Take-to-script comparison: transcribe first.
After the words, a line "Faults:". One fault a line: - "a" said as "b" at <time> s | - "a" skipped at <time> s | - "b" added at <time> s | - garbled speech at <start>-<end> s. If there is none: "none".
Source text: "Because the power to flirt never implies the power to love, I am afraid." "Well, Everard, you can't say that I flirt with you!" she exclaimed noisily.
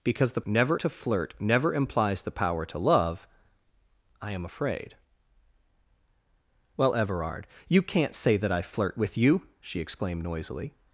"Because the never to flirt never implies the power to love, I am afraid." "Well, Everard, you can't say that I flirt with you!" she exclaimed noisily.
Faults:
- "power" said as "never" at 0.5 s